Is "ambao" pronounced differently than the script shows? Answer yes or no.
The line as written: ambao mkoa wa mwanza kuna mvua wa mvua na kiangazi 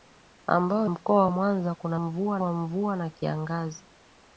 no